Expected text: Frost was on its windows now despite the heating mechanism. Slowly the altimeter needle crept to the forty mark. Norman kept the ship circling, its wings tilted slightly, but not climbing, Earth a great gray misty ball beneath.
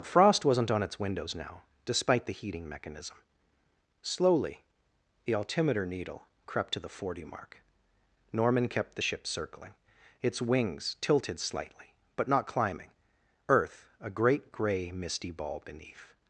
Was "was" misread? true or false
true